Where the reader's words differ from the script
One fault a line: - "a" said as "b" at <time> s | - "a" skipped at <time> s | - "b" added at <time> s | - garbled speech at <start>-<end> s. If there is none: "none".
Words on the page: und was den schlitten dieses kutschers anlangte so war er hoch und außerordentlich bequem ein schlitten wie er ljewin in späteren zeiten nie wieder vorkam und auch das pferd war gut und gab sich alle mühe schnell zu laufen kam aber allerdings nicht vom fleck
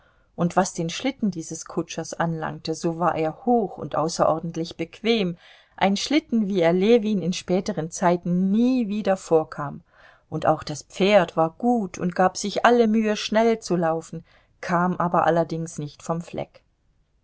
none